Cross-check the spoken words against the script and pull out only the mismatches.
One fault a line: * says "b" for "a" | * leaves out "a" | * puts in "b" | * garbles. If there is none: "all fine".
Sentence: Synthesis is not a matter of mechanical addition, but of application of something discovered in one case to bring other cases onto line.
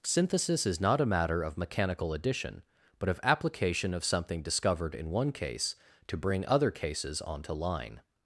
all fine